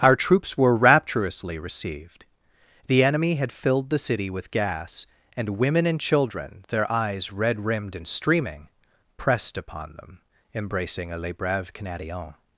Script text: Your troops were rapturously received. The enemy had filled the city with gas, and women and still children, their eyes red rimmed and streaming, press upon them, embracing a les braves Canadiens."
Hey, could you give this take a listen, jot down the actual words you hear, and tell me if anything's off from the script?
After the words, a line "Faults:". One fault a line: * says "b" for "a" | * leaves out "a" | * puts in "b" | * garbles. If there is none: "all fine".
Our troops were rapturously received. The enemy had filled the city with gas, and women and children, their eyes red rimmed and streaming, pressed upon them, embracing a les braves Canadiens."
Faults:
* says "Our" for "Your"
* leaves out "still"
* says "pressed" for "press"